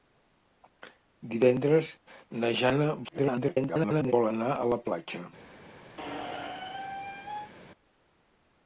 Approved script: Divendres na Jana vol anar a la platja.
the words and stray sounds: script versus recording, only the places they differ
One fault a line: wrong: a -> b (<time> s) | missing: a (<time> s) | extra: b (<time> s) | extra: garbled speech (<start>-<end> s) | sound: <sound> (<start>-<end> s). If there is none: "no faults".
extra: garbled speech (3.0-4.1 s)
sound: squeak (6.0-7.5 s)